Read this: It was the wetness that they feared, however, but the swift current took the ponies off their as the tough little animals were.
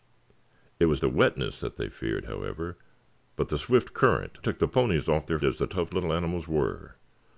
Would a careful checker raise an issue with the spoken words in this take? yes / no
no